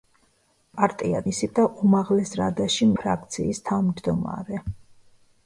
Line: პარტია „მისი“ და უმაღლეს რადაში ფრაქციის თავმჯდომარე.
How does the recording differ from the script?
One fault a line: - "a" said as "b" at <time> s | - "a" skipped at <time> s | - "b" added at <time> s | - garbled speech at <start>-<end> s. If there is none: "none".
none